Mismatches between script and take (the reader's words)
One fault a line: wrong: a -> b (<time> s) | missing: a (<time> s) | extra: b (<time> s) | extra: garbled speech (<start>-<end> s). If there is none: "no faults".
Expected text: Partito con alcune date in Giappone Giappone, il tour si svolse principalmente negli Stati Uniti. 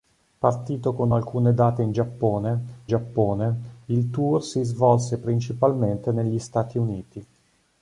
no faults